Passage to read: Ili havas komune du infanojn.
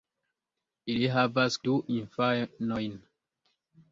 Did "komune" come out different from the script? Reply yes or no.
yes